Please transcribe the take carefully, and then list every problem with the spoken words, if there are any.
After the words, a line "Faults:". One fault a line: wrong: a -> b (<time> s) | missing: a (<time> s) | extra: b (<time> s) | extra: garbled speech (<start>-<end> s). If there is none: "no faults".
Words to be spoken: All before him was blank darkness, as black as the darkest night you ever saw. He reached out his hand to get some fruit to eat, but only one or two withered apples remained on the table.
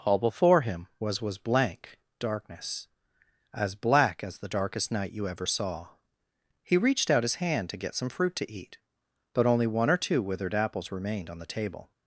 All before him was was blank darkness, as black as the darkest night you ever saw. He reached out his hand to get some fruit to eat, but only one or two withered apples remained on the table.
Faults:
extra: was (1.2 s)